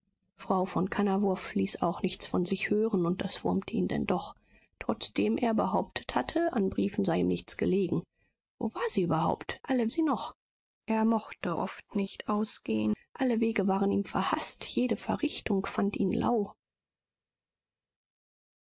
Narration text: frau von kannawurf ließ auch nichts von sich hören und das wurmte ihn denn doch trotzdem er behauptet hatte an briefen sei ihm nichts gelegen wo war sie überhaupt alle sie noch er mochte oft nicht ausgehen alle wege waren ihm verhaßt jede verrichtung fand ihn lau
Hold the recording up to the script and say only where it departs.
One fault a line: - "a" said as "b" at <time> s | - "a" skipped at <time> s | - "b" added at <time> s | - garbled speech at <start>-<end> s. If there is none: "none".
none